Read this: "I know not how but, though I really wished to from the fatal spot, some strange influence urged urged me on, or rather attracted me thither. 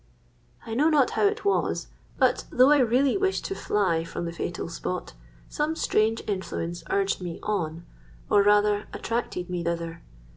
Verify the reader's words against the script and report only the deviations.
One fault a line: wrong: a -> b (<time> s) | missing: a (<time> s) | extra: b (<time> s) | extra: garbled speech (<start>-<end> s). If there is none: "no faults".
extra: it was (1.3 s)
extra: fly (3.6 s)
missing: urged (7.2 s)